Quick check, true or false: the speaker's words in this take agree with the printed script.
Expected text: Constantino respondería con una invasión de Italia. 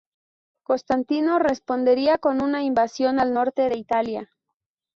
false